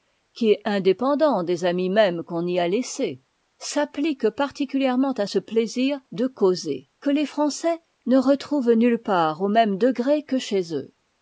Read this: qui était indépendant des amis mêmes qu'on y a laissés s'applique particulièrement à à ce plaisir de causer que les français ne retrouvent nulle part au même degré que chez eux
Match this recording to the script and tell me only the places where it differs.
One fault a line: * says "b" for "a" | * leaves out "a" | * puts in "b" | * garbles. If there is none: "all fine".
* says "est" for "était"
* leaves out "à"